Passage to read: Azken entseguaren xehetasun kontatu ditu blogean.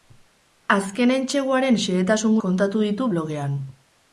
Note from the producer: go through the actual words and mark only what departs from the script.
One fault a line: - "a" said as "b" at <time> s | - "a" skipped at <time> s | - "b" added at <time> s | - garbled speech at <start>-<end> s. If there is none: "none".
none